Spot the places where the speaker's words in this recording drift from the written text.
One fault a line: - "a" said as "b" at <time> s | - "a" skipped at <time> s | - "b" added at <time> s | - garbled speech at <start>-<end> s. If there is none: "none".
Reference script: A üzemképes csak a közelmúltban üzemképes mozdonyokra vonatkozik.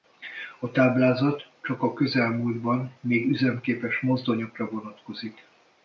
- "üzemképes" said as "táblázat" at 0.7 s
- "még" added at 3.0 s